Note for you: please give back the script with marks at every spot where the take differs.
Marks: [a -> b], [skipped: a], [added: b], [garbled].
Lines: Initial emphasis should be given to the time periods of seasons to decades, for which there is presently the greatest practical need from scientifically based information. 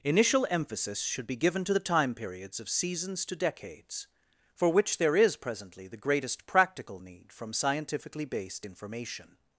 Initial emphasis should be given to the time periods of seasons to decades, for which there is presently the greatest practical need from scientifically based information.